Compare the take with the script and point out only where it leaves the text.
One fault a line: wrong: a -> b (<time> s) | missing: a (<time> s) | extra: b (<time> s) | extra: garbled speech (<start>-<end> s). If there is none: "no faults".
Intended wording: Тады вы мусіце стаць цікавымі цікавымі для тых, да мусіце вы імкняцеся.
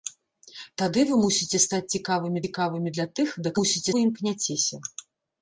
no faults